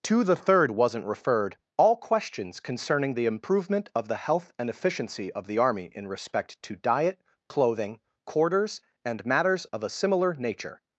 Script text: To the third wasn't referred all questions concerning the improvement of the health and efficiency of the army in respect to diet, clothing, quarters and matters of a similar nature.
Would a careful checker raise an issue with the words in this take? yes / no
no